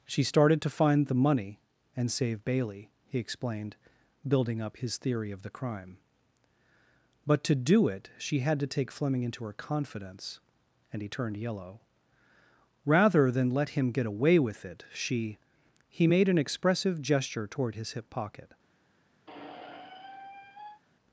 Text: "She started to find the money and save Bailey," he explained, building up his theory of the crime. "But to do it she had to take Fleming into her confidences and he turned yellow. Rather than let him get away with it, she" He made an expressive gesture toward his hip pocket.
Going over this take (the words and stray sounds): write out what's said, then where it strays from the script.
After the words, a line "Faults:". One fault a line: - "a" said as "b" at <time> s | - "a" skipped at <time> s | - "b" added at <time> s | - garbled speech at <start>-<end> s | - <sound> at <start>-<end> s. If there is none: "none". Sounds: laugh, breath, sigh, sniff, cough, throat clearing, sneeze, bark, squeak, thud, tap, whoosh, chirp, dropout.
"She started to find the money and save Bailey," he explained, building up his theory of the crime. "But to do it she had to take Fleming into her confidence and he turned yellow. Rather than let him get away with it, she" He made an expressive gesture toward his hip pocket.
Faults:
- "confidences" said as "confidence" at 9.5 s
- squeak at 19.3-20.8 s